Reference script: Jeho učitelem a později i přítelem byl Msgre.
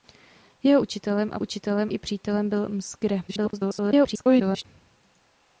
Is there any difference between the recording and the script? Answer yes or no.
yes